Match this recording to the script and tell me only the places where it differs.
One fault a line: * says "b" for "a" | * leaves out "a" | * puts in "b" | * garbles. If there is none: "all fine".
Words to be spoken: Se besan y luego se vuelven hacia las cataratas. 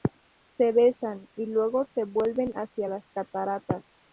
all fine